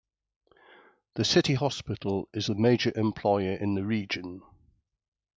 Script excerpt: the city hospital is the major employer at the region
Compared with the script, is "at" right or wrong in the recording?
wrong